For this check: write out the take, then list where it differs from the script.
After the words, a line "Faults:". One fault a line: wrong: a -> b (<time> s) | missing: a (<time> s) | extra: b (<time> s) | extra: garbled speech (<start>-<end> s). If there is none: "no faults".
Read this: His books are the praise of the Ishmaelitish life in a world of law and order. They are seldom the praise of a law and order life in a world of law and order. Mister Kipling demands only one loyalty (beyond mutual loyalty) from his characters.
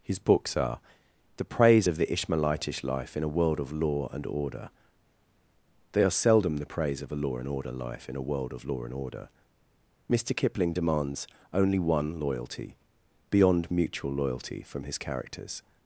His books are the praise of the Ishmaelitish life in a world of law and order. They are seldom the praise of a law and order life in a world of law and order. Mister Kipling demands only one loyalty (beyond mutual loyalty) from his characters.
Faults:
no faults